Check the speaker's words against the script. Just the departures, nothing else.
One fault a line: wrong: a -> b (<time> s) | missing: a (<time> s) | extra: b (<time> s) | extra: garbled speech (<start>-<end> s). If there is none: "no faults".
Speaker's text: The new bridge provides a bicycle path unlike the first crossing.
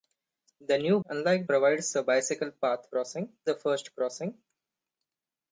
wrong: bridge -> unlike (1.0 s)
wrong: unlike -> crossing (2.9 s)